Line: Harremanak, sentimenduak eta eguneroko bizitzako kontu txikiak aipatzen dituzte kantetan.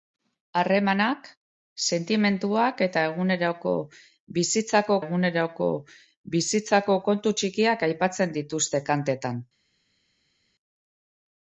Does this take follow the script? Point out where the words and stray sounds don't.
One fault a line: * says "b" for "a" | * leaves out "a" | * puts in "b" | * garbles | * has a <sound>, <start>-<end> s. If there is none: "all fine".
* puts in "eguneroko bizitzako"